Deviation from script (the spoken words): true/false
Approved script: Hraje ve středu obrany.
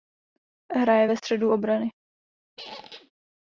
false